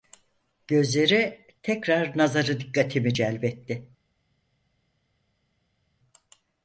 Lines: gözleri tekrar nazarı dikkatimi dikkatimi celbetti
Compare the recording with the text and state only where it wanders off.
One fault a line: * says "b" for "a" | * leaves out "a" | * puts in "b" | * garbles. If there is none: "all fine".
* leaves out "dikkatimi"